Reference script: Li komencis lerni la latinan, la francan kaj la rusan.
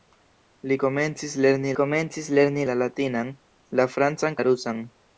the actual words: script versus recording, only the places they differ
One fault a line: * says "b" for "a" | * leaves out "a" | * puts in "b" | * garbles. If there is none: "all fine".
* puts in "komencis lerni"
* leaves out "kaj"